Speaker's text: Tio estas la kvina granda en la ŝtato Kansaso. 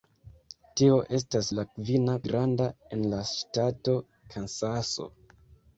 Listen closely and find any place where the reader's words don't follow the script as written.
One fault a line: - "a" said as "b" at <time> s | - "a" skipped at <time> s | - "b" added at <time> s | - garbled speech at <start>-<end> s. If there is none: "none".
none